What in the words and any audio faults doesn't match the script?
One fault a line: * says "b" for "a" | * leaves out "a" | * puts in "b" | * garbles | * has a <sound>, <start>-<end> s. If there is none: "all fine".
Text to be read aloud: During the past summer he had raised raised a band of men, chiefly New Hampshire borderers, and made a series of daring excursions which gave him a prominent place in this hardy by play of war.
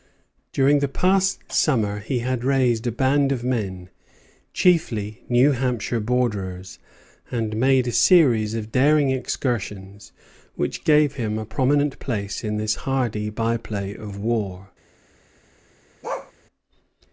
* leaves out "raised"
* has a bark, 16.0-16.3 s